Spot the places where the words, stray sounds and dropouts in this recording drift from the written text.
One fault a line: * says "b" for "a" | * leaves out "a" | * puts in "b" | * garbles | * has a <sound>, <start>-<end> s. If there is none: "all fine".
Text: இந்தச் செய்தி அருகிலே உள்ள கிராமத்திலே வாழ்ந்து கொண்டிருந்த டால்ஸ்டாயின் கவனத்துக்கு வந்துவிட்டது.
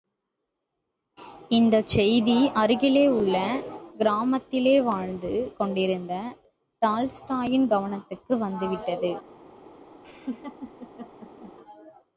* has a laugh, 10.0-11.5 s